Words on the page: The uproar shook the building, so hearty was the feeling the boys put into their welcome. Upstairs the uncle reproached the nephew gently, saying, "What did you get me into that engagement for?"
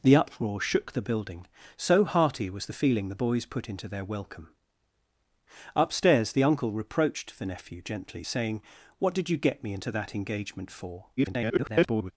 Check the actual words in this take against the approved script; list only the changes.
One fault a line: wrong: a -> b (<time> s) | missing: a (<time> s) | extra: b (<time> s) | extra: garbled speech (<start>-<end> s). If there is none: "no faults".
extra: garbled speech (11.2-12.1 s)